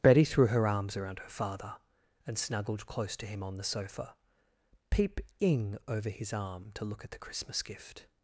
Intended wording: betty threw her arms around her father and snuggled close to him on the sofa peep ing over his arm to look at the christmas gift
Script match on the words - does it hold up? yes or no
yes